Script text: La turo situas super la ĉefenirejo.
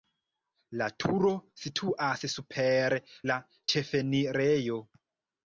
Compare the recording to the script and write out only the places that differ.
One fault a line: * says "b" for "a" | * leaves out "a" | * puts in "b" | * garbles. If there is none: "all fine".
all fine